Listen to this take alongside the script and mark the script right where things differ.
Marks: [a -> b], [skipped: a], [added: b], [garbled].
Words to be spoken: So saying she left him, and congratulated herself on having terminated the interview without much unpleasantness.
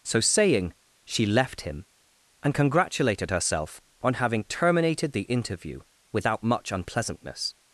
So saying she left him, and congratulated herself on having terminated the interview without much unpleasantness.